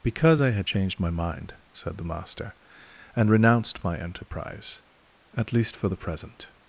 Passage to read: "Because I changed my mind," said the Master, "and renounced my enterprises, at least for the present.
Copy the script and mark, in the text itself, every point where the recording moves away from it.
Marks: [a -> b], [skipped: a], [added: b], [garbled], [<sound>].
"Because I [added: had] changed my mind," said the Master, "and renounced my [enterprises, -> enterprise] at least for the present.